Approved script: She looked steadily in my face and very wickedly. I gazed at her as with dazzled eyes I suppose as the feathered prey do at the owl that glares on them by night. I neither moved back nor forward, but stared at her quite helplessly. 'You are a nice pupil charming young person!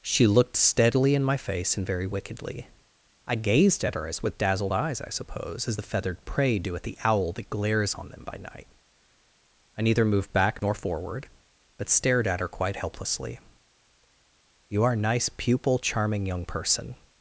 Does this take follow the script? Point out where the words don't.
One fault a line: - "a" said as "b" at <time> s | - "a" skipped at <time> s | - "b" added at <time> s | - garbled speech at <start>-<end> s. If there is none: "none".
none